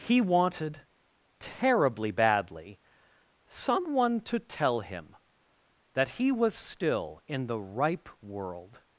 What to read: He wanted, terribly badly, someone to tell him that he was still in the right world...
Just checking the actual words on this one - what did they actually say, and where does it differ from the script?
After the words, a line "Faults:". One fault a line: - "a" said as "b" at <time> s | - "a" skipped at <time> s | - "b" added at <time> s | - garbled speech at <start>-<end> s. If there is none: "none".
He wanted, terribly badly, someone to tell him that he was still in the ripe world...
Faults:
- "right" said as "ripe" at 7.6 s